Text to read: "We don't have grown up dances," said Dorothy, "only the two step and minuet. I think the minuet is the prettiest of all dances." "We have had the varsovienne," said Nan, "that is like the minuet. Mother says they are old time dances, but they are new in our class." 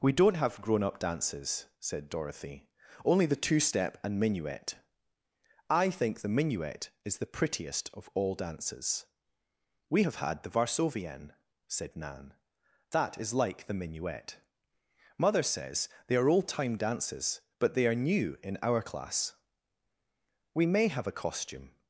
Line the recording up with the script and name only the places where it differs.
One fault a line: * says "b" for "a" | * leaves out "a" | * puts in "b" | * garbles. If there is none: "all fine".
* puts in "We may have a costume"